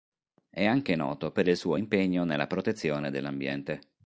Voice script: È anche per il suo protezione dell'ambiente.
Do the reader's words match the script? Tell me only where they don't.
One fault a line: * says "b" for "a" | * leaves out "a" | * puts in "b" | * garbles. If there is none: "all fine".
* puts in "noto"
* puts in "impegno nella"